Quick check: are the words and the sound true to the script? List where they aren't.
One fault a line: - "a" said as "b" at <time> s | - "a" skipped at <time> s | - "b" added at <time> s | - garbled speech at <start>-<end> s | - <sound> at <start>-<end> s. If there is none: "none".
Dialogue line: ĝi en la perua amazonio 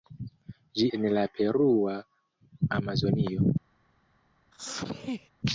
- sneeze at 4.5-5.3 s